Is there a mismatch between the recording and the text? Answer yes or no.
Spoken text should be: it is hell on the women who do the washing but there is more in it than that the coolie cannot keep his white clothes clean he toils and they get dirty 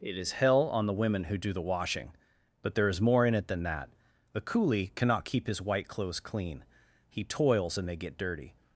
no